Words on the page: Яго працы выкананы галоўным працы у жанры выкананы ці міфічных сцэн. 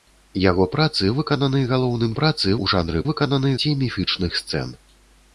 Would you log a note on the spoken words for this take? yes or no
no